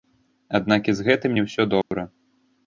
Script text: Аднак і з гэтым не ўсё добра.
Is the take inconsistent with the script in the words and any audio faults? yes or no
yes